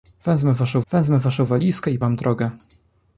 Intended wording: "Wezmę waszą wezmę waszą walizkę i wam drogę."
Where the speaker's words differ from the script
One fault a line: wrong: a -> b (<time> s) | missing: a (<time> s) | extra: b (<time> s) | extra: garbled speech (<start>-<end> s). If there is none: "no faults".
no faults